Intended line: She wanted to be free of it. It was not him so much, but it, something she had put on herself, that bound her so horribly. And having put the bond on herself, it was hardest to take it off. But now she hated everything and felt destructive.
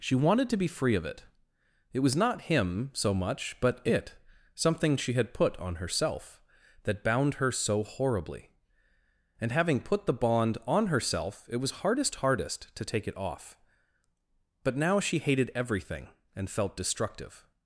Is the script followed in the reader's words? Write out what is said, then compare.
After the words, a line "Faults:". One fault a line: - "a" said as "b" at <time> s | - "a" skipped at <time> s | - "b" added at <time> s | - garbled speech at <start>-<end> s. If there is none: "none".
She wanted to be free of it. It was not him so much, but it, something she had put on herself, that bound her so horribly. And having put the bond on herself, it was hardest hardest to take it off. But now she hated everything and felt destructive.
Faults:
- "hardest" added at 12.2 s